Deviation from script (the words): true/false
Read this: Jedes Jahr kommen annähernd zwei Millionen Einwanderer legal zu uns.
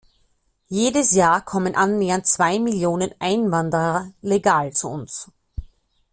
false